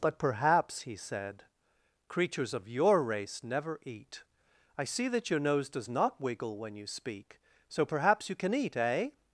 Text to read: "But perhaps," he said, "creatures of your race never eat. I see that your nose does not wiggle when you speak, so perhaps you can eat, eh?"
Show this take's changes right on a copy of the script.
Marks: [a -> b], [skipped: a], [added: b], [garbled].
"But perhaps," he said, "creatures of your race never eat. I see that your nose does not wiggle when you speak, so perhaps you can eat, eh?"